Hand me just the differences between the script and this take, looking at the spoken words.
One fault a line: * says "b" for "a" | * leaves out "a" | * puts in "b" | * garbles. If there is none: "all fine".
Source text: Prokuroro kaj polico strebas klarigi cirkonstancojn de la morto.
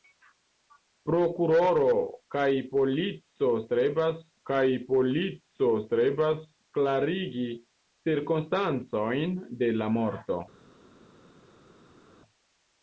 * puts in "kaj polico strebas"